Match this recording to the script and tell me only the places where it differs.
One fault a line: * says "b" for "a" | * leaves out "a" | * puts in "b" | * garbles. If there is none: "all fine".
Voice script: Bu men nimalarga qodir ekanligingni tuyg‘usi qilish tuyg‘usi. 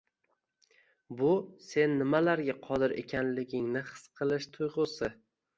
* says "sen" for "men"
* says "his" for "tuyg‘usi"